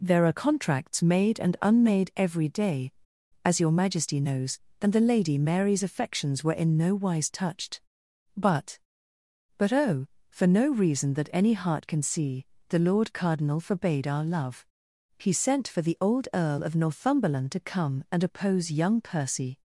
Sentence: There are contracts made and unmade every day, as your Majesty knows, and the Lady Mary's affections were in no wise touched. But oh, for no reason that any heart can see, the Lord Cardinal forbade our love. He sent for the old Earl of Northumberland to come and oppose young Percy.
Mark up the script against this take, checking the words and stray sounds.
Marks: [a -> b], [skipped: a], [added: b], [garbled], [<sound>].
There are contracts made and unmade every day, as your Majesty knows, and the Lady Mary's affections were in no wise touched. But [added: But] oh, for no reason that any heart can see, the Lord Cardinal forbade our love. He sent for the old Earl of Northumberland to come and oppose young Percy.